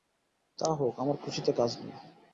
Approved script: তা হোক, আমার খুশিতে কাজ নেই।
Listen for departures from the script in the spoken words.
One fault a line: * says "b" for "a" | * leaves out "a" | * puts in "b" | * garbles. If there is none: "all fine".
all fine